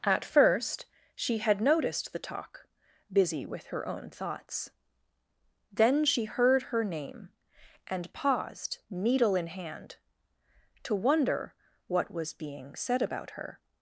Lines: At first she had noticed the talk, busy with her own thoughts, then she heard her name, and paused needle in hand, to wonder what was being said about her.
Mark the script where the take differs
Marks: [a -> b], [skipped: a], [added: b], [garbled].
At first she had noticed the talk, busy with her own thoughts, then she heard her name, and paused needle in hand, to wonder what was being said about her.